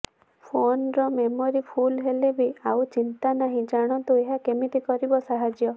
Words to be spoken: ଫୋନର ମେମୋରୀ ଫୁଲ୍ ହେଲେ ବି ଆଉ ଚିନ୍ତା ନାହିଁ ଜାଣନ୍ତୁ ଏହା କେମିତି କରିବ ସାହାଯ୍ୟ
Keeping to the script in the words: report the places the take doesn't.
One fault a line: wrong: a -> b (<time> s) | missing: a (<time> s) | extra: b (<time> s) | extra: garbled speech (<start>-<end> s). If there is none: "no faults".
no faults